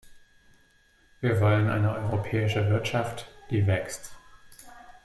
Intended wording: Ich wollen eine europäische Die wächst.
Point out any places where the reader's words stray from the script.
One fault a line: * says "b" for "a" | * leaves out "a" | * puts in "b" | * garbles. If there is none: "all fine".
* says "Wir" for "Ich"
* puts in "Wirtschaft"